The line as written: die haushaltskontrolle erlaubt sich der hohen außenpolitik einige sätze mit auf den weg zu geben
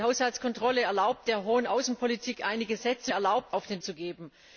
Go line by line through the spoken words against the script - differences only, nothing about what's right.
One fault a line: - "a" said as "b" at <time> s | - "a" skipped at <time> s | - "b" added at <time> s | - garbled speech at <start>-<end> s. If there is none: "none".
- "sich" skipped at 1.3 s
- "mit" said as "erlaubt" at 3.1 s
- "weg" skipped at 3.8 s